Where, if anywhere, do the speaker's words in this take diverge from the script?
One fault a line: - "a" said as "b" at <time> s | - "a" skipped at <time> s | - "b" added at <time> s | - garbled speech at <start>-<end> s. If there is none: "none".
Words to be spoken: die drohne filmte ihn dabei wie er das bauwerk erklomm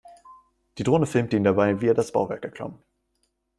none